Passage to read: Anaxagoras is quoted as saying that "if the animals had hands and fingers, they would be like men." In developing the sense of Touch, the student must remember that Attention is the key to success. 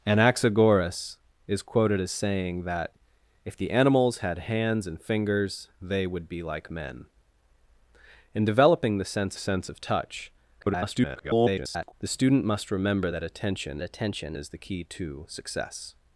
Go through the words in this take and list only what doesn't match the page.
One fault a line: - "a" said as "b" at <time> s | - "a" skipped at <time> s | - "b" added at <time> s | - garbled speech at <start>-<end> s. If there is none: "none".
- "sense" added at 9.4 s
- garbled speech at 10.6-11.9 s
- "Attention" added at 13.8 s